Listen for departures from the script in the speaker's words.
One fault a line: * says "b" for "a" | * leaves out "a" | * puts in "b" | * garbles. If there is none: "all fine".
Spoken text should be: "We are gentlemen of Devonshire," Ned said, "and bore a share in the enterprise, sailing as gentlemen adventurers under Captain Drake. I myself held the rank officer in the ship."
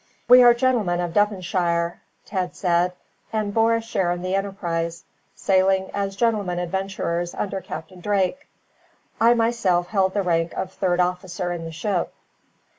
* puts in "of third"